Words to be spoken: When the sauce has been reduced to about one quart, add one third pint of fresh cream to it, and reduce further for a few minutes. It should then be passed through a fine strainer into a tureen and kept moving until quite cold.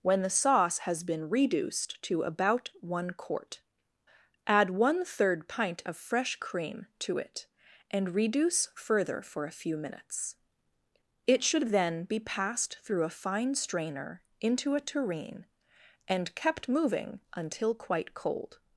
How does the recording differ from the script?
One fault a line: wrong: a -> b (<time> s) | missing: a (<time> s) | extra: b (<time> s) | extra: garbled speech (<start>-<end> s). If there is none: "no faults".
no faults